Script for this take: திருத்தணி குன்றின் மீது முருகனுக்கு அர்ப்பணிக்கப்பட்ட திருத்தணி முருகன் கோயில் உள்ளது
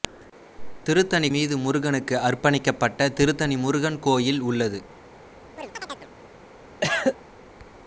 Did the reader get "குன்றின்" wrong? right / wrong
wrong